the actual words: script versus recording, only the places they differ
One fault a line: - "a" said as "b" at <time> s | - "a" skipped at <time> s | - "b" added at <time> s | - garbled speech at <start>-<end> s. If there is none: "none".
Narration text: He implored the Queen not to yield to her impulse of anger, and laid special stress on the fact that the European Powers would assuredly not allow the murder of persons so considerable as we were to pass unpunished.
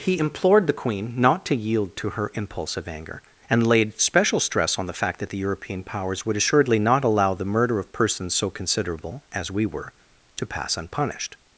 none